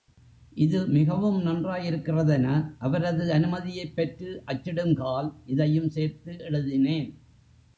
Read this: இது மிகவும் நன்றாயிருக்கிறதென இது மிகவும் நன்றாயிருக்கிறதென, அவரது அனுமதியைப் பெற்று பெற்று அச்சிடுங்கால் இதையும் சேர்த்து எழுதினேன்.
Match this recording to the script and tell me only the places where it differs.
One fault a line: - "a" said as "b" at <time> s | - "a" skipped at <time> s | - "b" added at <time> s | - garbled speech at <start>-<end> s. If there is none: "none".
- "இது மிகவும் நன்றாயிருக்கிறதென" skipped at 2.5 s
- "பெற்று" skipped at 4.4 s